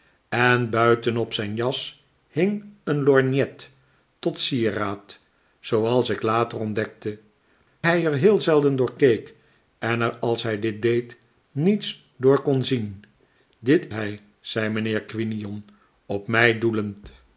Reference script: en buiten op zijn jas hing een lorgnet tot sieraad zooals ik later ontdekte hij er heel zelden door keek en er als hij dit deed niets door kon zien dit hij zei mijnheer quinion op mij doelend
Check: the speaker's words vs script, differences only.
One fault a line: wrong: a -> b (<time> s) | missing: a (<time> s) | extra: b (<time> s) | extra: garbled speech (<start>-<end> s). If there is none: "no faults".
no faults